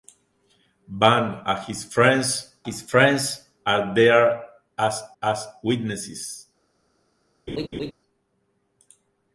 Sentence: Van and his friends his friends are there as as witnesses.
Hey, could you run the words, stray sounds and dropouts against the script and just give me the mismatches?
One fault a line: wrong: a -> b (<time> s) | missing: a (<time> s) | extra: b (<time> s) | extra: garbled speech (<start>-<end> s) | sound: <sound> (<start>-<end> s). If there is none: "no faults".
sound: laugh (7.5-7.9 s)